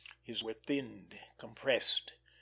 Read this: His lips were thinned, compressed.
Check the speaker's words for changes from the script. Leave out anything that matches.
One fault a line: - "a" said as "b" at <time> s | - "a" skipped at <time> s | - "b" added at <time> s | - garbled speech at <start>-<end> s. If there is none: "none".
- "lips" skipped at 0.4 s